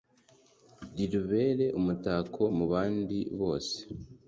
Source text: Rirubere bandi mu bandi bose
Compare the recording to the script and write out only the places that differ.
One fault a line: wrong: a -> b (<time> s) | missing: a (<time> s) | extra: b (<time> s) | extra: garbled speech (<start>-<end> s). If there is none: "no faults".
wrong: bandi -> umutako (1.8 s)